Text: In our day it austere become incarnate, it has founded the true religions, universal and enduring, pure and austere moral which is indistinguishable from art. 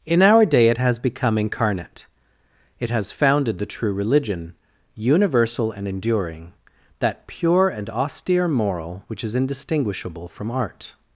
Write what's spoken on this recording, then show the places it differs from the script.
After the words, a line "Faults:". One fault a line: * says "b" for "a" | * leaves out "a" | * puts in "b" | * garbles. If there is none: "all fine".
In our day it has become incarnate, it has founded the true religion, universal and enduring, that pure and austere moral which is indistinguishable from art.
Faults:
* says "has" for "austere"
* says "religion" for "religions"
* puts in "that"